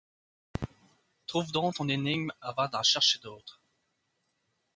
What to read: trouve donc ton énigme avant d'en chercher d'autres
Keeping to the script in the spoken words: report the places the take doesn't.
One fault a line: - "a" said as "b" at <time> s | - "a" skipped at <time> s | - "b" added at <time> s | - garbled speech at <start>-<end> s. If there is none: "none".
none